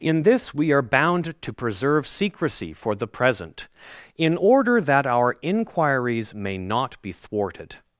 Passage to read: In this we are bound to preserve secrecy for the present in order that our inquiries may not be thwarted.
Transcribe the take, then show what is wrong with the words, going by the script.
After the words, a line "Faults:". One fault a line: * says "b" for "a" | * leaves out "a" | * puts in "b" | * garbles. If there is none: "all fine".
In this we are bound to preserve secrecy for the present in order that our inquiries may not be thwarted.
Faults:
all fine